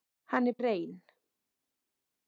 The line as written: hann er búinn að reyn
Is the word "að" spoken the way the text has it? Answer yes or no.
no